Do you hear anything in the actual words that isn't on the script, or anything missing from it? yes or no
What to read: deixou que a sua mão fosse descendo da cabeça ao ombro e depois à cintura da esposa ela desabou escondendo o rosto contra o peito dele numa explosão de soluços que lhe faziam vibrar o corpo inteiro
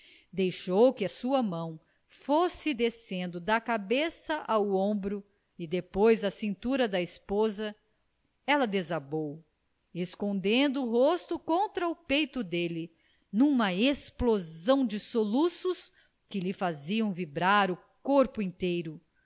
no